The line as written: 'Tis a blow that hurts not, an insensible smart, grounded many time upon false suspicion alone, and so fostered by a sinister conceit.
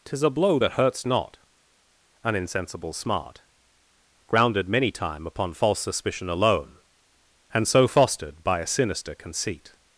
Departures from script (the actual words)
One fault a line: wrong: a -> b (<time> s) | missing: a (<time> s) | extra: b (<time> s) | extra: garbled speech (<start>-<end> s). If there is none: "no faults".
no faults